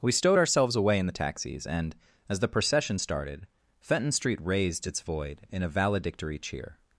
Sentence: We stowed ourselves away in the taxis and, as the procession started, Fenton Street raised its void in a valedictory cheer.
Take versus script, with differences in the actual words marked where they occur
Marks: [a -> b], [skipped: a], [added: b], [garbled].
We stowed ourselves away in the taxis and, as the procession started, Fenton Street raised its void in a valedictory cheer.